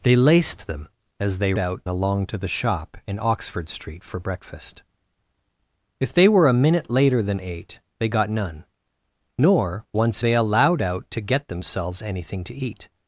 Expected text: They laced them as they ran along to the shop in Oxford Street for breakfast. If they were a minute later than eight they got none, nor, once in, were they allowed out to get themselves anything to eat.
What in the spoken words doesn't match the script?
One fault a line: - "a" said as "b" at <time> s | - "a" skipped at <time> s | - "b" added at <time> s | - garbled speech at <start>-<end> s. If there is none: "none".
- "ran" said as "out" at 1.6 s
- "in were" skipped at 10.2 s